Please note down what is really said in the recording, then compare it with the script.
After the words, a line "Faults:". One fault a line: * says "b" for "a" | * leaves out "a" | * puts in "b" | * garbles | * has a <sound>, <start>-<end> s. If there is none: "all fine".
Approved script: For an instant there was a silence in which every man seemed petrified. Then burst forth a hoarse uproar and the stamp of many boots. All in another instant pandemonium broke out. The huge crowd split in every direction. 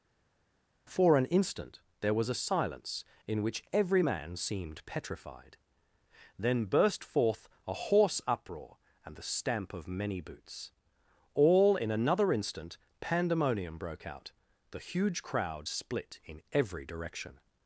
For an instant there was a silence in which every man seemed petrified. Then burst forth a hoarse uproar and the stamp of many boots. All in another instant pandemonium broke out. The huge crowd split in every direction.
Faults:
all fine